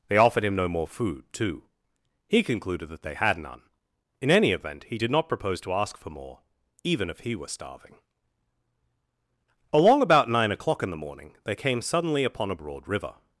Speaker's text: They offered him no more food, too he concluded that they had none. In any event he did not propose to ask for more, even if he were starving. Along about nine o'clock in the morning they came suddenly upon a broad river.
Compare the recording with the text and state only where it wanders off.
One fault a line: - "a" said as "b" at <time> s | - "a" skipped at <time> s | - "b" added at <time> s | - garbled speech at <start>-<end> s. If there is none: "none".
none